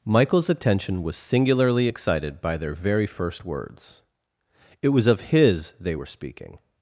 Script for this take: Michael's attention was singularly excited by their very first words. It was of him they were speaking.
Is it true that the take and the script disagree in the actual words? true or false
true